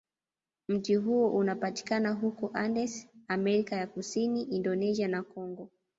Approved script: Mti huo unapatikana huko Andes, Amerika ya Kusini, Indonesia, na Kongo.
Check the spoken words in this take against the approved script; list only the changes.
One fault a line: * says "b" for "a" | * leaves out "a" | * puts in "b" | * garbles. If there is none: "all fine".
all fine